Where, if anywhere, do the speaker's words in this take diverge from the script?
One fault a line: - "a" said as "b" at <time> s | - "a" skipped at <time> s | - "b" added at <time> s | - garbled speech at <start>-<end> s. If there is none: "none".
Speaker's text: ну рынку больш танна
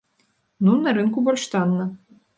- "на" added at 0.8 s